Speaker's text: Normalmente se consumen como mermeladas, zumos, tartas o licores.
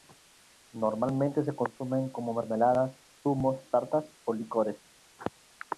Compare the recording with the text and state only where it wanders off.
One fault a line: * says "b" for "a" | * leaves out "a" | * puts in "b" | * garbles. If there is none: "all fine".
all fine